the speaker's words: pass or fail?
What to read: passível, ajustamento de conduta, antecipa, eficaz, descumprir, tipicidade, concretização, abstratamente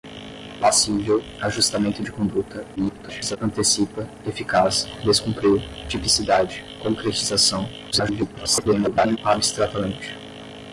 fail